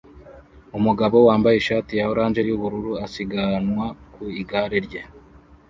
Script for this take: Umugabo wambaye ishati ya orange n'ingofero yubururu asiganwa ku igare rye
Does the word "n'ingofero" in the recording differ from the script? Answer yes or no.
yes